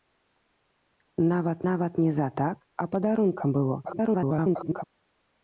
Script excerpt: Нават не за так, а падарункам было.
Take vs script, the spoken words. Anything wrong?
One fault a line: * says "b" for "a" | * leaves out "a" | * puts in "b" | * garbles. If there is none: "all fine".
* puts in "нават"
* garbles